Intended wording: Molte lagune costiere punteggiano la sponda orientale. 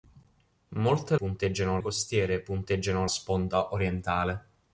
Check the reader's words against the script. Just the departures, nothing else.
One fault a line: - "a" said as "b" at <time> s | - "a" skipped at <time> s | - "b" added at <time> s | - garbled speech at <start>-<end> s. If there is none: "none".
- "lagune" said as "punteggiano" at 1.1 s
- "la" skipped at 3.1 s